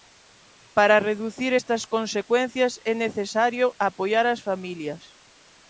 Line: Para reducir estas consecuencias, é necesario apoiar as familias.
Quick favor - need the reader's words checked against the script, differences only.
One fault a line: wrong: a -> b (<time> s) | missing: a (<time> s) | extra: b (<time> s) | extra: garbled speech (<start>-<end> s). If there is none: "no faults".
no faults